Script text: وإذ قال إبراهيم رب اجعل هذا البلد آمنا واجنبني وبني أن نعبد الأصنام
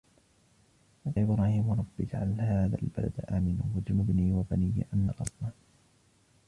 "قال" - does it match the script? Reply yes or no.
no